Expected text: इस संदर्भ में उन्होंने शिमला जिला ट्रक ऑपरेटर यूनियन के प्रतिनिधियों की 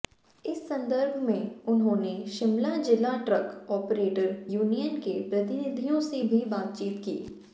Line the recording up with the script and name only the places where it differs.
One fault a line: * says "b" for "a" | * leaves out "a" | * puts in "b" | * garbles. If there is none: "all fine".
* puts in "से भी बातचीत"